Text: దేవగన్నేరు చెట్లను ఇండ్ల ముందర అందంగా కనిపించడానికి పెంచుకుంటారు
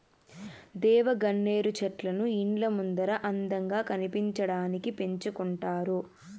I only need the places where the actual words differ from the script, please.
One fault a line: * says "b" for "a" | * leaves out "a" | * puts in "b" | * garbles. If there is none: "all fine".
all fine